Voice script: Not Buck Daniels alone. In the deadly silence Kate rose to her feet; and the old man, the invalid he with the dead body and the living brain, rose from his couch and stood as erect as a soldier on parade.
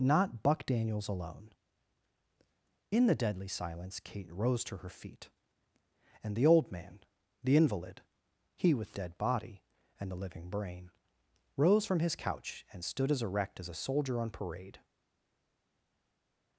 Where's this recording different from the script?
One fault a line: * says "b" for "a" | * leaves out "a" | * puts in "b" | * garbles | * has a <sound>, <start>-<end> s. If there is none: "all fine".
* leaves out "the"